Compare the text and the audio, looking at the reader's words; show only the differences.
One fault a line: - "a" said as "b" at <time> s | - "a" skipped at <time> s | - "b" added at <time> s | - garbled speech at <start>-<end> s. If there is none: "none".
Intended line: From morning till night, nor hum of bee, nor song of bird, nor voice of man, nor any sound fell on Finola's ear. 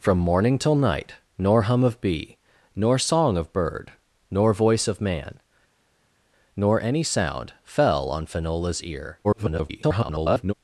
- garbled speech at 9.2-10.5 s